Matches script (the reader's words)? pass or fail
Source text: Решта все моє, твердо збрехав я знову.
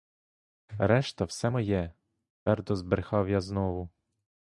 pass